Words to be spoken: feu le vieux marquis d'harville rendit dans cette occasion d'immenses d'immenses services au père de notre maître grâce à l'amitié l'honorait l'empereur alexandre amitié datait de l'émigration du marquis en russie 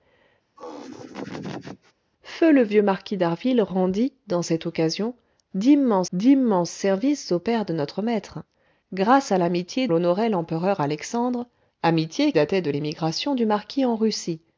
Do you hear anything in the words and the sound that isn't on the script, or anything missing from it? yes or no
yes